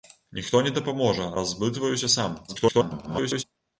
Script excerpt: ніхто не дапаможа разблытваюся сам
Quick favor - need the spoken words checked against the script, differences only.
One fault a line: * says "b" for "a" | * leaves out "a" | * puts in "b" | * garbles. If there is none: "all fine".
* garbles